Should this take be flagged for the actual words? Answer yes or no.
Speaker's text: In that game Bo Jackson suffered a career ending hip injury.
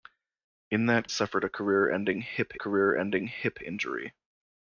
yes